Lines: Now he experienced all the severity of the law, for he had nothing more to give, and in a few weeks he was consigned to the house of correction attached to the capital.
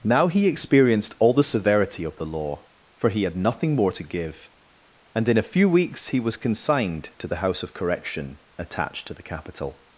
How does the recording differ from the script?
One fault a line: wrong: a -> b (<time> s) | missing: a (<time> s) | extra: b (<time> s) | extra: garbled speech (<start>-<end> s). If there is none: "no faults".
no faults